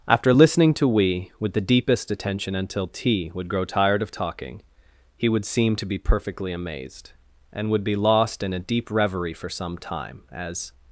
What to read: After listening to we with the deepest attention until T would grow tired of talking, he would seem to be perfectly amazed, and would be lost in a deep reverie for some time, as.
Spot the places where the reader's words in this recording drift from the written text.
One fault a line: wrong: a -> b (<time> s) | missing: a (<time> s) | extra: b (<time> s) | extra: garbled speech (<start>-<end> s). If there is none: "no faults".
no faults